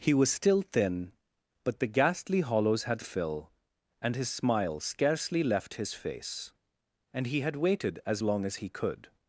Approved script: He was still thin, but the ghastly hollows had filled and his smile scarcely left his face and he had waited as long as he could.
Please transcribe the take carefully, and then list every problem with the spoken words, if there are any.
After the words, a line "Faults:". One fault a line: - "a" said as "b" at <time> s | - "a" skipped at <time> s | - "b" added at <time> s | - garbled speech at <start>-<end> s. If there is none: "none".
He was still thin, but the ghastly hollows had fill and his smile scarcely left his face and he had waited as long as he could.
Faults:
- "filled" said as "fill" at 3.0 s